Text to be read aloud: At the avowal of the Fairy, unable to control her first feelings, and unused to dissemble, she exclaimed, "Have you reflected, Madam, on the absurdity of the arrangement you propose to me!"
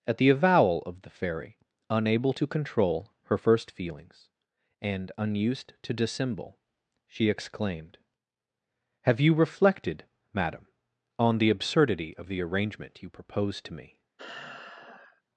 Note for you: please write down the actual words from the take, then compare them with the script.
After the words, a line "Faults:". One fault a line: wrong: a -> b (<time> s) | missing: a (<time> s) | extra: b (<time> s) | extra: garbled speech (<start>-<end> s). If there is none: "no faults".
At the avowal of the Fairy, unable to control her first feelings, and unused to dissemble, she exclaimed, "Have you reflected, Madam, on the absurdity of the arrangement you propose to me!"
Faults:
no faults